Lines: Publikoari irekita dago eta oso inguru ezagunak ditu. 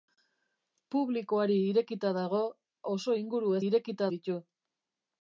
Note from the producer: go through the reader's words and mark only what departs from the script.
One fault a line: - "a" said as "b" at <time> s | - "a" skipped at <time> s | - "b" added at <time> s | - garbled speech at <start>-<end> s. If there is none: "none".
- "eta" skipped at 2.4 s
- "ezagunak" said as "irekita" at 3.6 s